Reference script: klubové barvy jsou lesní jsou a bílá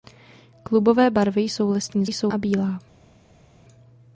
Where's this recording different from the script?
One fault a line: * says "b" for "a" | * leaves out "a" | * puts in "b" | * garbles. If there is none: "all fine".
all fine